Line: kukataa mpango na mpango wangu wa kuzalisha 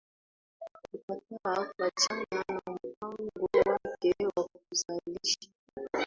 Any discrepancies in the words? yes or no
yes